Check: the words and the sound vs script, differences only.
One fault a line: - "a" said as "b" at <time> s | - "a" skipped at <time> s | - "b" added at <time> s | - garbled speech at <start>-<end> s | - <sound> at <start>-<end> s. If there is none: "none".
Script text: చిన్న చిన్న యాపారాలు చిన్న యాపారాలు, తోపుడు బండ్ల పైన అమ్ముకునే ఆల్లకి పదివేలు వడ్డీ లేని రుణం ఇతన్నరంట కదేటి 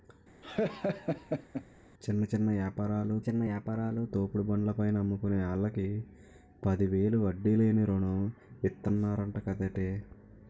- laugh at 0.4-1.6 s